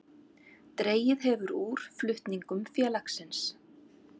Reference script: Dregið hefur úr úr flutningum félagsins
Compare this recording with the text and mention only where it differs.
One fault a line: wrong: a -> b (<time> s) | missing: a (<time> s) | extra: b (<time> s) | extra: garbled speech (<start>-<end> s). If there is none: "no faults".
missing: úr (1.8 s)